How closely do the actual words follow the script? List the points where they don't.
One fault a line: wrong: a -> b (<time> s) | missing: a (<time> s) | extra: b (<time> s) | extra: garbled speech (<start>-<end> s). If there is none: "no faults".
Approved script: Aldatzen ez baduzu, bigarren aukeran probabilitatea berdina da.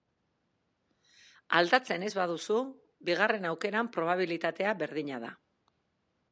no faults